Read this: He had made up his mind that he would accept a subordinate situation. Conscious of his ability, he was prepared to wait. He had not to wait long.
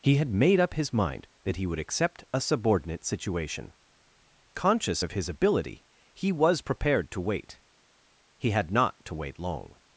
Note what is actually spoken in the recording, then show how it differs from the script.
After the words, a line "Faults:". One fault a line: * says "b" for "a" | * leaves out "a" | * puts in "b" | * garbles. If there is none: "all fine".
He had made up his mind that he would accept a subordinate situation. Conscious of his ability, he was prepared to wait. He had not to wait long.
Faults:
all fine